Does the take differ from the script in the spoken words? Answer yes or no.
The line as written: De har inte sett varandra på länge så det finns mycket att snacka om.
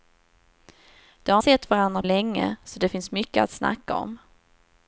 yes